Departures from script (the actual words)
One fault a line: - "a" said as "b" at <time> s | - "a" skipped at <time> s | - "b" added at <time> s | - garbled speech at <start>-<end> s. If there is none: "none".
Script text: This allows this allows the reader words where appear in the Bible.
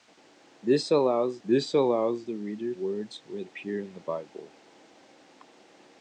none